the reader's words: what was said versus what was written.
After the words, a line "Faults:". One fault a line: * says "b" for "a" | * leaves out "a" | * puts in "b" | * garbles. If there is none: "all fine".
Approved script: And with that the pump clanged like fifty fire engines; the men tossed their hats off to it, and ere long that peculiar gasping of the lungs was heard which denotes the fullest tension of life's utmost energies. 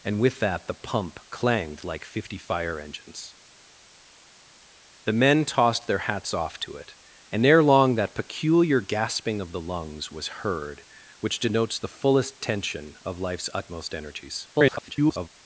And with that the pump clanged like fifty fire engines; the men tossed their hats off to it, and ere long that peculiar gasping of the lungs was heard which denotes the fullest tension of life's utmost energies. [garbled]
Faults:
* garbles